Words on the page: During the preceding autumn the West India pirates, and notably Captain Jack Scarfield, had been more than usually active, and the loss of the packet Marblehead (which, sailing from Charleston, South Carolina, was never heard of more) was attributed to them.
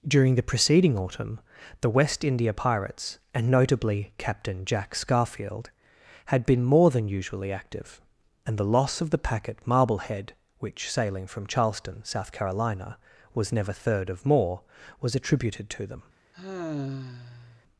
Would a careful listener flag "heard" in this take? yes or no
yes